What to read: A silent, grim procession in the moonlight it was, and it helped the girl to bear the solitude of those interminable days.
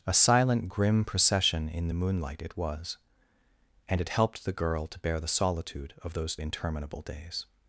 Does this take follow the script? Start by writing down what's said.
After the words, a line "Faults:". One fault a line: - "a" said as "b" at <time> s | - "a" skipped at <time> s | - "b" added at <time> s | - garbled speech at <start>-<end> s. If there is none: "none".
A silent, grim procession in the moonlight it was, and it helped the girl to bear the solitude of those interminable days.
Faults:
none